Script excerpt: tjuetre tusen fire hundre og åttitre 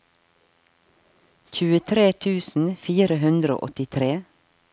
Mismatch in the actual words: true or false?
false